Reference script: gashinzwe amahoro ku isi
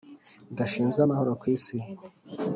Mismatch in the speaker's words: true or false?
false